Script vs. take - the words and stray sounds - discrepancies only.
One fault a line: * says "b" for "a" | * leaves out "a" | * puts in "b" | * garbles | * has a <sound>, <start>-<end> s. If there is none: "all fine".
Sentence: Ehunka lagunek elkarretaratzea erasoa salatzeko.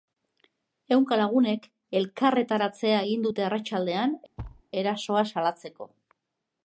* puts in "egin dute arratsaldean"
* has a thud, 4.4-4.6 s